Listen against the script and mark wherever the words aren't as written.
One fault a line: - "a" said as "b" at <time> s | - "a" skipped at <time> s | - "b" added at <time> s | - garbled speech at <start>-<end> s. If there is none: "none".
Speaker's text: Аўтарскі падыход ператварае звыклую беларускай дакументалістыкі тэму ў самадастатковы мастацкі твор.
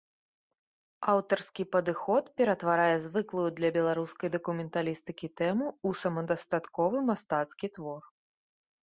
- "для" added at 3.6 s